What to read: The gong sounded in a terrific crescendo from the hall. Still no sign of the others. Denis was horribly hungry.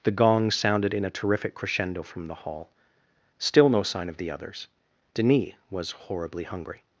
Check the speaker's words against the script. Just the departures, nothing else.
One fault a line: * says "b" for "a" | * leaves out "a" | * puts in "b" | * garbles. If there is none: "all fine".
all fine